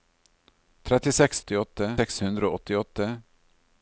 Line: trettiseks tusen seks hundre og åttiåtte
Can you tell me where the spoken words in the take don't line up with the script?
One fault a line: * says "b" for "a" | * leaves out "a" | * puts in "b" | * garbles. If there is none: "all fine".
* says "åttiåtte" for "tusen"